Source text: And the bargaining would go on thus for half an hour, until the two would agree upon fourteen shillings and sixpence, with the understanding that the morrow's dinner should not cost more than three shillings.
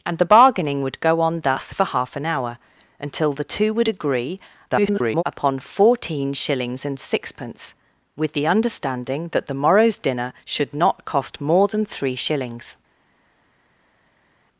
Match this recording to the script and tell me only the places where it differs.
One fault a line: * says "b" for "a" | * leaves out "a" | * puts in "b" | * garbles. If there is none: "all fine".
* garbles